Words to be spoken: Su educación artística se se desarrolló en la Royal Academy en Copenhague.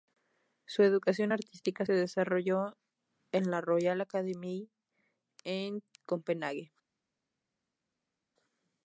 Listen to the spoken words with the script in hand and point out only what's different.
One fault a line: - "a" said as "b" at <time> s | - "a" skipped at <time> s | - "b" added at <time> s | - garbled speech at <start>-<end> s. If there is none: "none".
- "se" skipped at 1.9 s